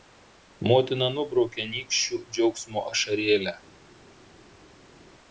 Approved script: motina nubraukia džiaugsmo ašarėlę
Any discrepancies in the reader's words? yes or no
yes